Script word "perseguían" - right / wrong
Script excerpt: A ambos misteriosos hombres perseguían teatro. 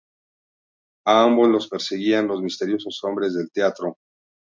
wrong